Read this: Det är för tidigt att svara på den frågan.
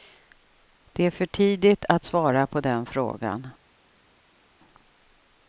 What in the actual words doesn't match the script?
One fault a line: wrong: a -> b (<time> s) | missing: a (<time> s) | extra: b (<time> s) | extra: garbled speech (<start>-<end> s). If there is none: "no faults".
no faults